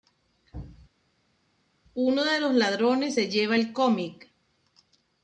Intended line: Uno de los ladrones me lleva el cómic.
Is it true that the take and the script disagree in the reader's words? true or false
true